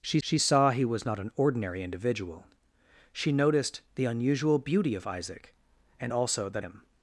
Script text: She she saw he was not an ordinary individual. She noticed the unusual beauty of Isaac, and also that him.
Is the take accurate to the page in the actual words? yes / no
yes